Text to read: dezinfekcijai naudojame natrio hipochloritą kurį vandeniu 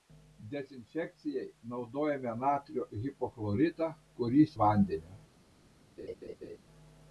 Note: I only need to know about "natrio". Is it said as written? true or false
true